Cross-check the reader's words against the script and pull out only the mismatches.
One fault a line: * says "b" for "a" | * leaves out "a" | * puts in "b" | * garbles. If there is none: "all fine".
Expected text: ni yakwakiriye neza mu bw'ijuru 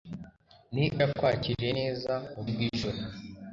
all fine